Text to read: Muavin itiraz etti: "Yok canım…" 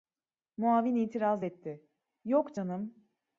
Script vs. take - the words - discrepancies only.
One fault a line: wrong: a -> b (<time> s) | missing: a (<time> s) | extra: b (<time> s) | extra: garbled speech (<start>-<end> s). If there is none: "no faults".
no faults